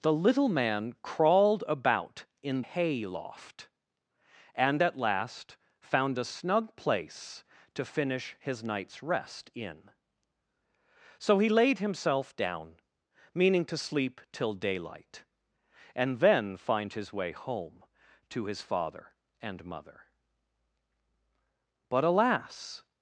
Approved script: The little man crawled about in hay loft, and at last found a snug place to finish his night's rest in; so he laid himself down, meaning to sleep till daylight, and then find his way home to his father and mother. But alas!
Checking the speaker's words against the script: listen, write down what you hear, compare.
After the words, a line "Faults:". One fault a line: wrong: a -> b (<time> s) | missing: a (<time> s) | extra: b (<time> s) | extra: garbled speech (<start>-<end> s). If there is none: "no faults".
The little man crawled about in hay loft, and at last found a snug place to finish his night's rest in; so he laid himself down, meaning to sleep till daylight, and then find his way home to his father and mother. But alas!
Faults:
no faults